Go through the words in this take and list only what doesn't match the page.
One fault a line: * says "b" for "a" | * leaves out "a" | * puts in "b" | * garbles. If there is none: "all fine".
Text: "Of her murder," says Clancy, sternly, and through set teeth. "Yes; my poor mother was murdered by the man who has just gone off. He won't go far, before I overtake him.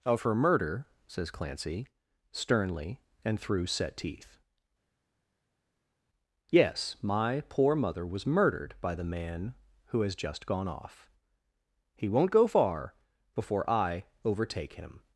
all fine